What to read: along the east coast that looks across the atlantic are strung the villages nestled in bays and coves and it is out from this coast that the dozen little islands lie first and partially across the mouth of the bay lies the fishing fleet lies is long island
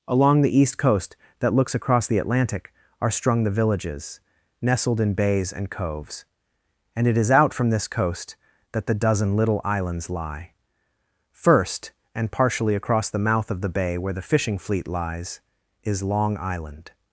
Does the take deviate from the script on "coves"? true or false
false